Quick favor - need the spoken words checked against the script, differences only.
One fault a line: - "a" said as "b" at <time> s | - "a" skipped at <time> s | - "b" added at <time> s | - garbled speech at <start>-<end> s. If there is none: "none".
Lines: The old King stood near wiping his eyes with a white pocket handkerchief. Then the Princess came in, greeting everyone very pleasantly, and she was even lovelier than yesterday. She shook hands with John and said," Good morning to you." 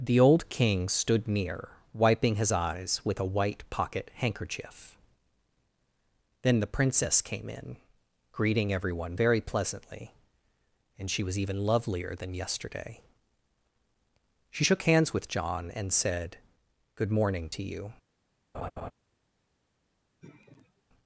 none